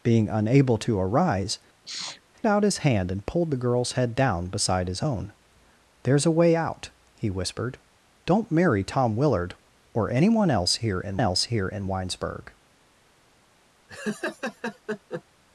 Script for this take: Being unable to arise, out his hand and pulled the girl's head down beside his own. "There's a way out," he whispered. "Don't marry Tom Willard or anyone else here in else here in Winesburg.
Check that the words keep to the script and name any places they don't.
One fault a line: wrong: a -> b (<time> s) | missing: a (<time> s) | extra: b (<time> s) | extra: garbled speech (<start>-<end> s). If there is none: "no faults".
no faults